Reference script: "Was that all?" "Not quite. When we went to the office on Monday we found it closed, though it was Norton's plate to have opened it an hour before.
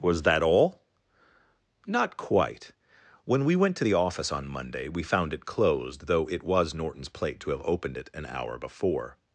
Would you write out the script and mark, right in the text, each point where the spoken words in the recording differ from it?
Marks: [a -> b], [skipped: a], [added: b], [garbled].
"Was that all?" "Not quite. When we went to the office on Monday we found it closed, though it was Norton's plate to have opened it an hour before.